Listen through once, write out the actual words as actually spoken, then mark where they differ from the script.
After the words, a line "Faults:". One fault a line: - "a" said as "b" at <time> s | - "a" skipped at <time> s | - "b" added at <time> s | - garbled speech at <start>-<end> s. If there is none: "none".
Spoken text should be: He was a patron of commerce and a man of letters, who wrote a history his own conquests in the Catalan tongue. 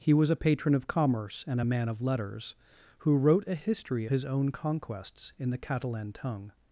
He was a patron of commerce and a man of letters, who wrote a history his own conquests in the Catalan tongue.
Faults:
none